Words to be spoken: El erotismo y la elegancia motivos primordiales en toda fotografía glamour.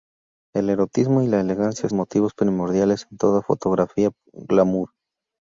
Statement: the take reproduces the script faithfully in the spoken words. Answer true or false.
true